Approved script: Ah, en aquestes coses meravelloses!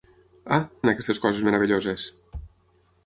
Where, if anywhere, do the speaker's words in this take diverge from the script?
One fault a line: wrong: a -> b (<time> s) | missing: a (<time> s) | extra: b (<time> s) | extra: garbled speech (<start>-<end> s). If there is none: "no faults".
no faults